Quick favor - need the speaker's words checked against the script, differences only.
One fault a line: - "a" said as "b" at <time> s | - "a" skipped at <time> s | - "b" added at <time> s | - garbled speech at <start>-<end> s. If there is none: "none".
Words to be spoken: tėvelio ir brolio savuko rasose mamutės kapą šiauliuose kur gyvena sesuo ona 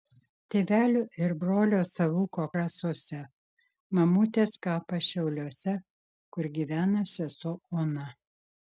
none